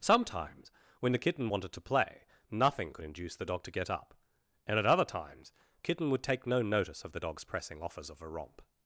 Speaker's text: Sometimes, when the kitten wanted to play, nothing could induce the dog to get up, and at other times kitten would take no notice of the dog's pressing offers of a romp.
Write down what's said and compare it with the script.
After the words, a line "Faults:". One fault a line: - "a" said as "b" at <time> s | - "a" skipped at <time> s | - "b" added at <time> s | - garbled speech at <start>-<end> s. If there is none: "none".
Sometimes, when the kitten wanted to play, nothing could induce the dog to get up, and at other times kitten would take no notice of the dog's pressing offers of a romp.
Faults:
none